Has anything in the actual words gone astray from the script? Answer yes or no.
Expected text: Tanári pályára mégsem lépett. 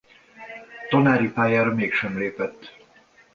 no